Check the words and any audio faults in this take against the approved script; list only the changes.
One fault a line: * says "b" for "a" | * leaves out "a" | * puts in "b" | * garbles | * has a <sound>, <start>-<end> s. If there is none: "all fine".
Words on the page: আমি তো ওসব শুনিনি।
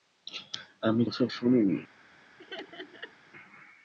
* leaves out "তো"
* has a laugh, 2.4-3.1 s